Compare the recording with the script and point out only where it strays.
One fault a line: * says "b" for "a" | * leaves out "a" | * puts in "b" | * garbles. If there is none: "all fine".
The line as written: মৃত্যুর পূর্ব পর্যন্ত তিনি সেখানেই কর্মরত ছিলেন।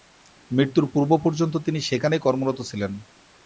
all fine